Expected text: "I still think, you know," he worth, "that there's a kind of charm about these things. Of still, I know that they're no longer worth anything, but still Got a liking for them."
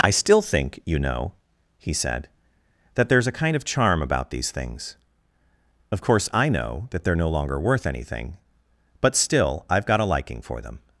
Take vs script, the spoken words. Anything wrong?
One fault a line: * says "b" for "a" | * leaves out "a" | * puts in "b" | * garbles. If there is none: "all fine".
* says "said" for "worth"
* says "course" for "still"
* puts in "I've"